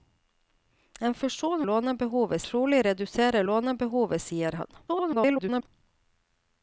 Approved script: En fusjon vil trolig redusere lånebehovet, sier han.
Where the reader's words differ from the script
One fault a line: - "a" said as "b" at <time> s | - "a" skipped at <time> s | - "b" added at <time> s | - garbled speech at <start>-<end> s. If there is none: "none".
- "vil" said as "lånebehovet" at 1.6 s
- garbled speech at 4.9-5.7 s